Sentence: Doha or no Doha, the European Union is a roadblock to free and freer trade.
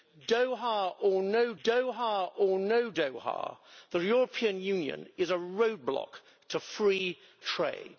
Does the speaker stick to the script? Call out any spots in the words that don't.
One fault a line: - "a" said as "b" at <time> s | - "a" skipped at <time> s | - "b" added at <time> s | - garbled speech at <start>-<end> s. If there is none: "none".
- "or no Doha" added at 2.4 s
- "and freer" skipped at 7.2 s